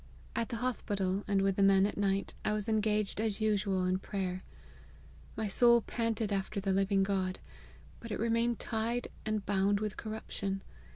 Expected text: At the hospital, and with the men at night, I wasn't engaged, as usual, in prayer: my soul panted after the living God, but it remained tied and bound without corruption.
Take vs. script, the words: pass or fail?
fail